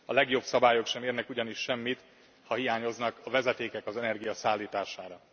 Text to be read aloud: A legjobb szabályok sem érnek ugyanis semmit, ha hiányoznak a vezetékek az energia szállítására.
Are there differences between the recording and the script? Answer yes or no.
no